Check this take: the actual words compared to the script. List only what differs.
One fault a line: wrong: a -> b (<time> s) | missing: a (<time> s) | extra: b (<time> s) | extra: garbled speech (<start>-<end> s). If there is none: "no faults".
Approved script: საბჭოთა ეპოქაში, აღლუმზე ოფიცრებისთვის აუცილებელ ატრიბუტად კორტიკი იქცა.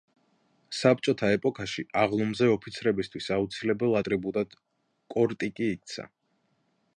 no faults